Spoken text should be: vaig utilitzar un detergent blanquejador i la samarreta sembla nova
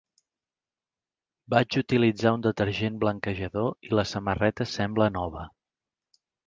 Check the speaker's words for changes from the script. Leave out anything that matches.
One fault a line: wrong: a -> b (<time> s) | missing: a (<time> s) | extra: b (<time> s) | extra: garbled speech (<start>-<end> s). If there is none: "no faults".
no faults